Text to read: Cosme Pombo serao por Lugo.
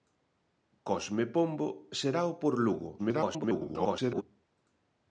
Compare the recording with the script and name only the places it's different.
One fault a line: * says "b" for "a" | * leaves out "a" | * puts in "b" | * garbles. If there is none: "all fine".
* garbles